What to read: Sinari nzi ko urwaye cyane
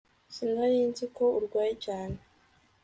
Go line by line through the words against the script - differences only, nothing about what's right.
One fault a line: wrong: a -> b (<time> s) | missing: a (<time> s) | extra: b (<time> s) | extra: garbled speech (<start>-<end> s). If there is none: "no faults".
no faults